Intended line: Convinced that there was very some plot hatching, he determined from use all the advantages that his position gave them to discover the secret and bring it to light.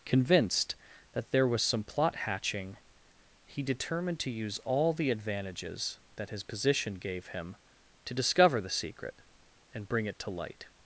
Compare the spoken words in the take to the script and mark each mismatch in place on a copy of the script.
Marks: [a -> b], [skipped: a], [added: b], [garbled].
Convinced that there was [skipped: very] some plot hatching, he determined [from -> to] use all the advantages that his position gave [them -> him] to discover the secret and bring it to light.